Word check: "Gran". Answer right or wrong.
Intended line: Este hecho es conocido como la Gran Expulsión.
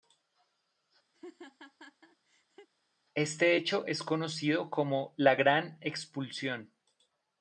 right